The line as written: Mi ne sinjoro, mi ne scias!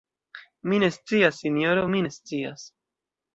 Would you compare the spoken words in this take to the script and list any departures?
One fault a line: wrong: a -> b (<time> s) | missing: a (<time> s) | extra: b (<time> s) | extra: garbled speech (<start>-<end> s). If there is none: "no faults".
extra: scias (0.9 s)